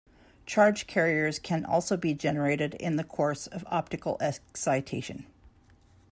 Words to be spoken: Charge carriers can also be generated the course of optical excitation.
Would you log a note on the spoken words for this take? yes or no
yes